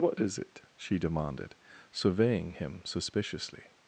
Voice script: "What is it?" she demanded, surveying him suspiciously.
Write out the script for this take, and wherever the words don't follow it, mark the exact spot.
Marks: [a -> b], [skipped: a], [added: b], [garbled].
"What is it?" she demanded, surveying him suspiciously.